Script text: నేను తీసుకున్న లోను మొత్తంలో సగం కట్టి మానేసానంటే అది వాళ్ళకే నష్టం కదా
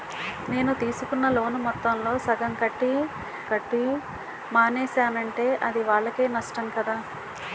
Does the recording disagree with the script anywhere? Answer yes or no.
yes